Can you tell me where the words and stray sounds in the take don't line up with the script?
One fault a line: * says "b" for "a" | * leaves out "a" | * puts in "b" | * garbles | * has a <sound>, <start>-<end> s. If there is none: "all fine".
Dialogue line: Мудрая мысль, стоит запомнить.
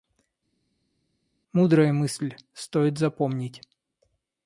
all fine